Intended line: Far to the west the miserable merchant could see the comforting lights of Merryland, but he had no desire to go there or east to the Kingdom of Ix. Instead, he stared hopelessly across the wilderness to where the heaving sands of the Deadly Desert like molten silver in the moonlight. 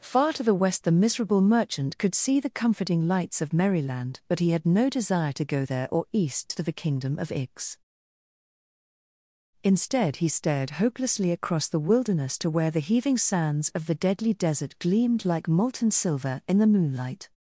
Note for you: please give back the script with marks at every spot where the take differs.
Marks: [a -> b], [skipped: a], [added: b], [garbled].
Far to the west the miserable merchant could see the comforting lights of Merryland, but he had no desire to go there or east to the Kingdom of Ix. Instead, he stared hopelessly across the wilderness to where the heaving sands of the Deadly Desert [added: gleamed] like molten silver in the moonlight.